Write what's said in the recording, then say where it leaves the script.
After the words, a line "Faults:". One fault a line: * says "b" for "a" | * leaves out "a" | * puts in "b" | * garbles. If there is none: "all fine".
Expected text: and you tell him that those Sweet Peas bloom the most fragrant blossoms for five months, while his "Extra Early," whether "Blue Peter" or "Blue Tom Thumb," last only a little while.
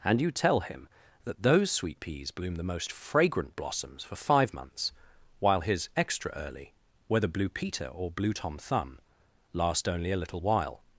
and you tell him that those Sweet Peas bloom the most fragrant blossoms for five months, while his "Extra Early," whether "Blue Peter" or "Blue Tom Thumb," last only a little while.
Faults:
all fine